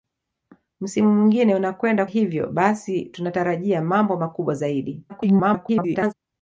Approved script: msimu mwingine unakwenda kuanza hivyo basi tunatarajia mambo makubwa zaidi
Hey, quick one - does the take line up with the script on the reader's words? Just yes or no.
no